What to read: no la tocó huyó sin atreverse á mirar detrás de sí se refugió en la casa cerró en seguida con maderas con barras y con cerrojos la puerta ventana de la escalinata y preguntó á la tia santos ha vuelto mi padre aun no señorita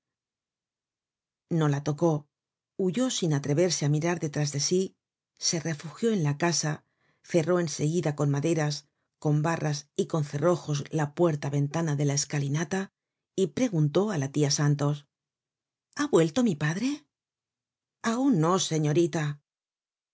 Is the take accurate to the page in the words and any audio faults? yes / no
yes